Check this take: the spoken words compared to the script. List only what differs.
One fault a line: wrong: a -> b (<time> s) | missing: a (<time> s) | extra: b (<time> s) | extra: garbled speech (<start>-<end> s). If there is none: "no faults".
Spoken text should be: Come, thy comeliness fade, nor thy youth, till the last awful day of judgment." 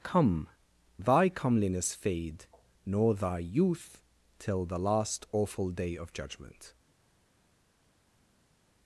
no faults